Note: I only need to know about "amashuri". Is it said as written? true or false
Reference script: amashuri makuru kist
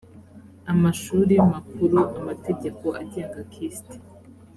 true